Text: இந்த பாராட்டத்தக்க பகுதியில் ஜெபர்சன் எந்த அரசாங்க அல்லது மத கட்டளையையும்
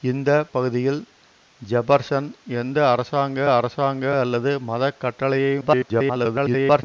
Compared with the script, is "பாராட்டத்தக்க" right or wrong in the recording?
wrong